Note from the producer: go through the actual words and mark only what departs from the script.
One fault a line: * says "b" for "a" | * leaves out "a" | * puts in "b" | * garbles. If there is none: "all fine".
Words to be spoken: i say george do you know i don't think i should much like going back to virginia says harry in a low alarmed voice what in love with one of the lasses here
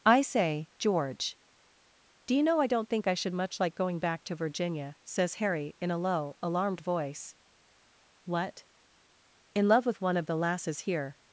all fine